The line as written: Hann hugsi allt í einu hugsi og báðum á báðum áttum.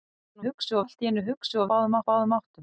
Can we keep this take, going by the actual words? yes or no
yes